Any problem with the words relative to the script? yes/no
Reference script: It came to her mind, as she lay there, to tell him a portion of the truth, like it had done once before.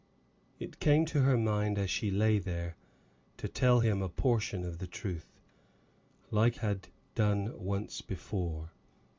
yes